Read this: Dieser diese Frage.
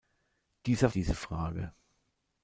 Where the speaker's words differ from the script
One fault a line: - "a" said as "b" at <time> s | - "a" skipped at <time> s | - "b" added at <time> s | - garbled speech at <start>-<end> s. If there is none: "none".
none